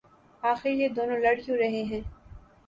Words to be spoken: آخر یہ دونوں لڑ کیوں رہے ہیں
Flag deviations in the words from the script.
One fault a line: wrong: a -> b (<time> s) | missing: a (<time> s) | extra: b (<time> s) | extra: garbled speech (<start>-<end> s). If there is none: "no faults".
no faults